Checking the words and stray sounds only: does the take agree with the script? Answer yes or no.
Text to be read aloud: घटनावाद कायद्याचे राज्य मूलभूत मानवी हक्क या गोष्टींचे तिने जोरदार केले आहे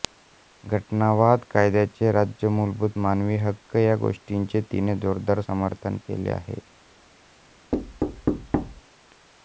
no